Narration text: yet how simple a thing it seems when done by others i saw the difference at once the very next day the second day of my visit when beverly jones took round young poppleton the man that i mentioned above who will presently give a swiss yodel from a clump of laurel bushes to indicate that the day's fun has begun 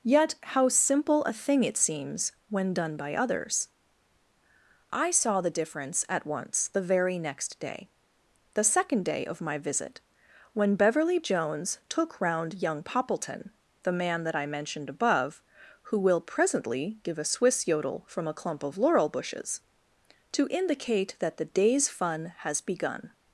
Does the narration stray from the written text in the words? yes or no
no